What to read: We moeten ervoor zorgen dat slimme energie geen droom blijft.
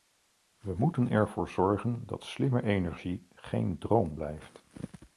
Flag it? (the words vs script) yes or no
no